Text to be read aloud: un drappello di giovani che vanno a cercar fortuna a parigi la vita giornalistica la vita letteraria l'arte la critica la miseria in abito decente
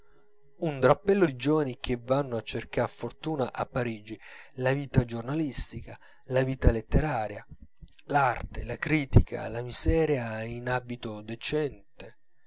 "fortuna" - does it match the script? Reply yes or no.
yes